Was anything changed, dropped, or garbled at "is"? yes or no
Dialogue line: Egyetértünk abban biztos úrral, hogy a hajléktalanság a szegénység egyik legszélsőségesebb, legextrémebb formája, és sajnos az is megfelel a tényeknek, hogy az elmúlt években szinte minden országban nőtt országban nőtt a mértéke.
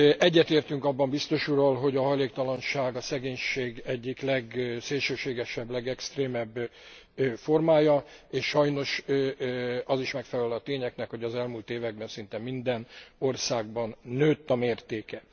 no